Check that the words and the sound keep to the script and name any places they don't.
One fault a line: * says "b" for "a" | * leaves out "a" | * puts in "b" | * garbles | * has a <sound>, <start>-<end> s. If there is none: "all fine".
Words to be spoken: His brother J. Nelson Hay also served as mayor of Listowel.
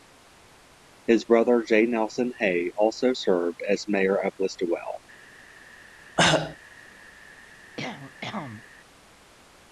* has a cough, 6.2-6.6 s
* has a cough, 7.8-8.6 s